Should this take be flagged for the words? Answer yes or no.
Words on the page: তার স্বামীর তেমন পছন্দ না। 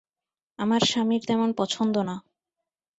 yes